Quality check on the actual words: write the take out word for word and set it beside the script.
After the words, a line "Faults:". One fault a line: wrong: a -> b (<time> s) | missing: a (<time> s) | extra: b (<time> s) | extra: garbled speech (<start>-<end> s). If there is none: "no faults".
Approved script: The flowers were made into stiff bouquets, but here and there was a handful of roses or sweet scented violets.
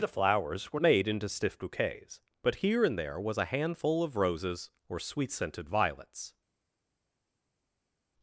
The flowers were made into stiff bouquets, but here and there was a handful of roses or sweet scented violets.
Faults:
no faults